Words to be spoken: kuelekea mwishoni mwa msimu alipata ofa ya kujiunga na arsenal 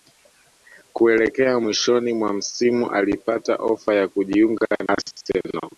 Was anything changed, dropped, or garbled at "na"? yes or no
yes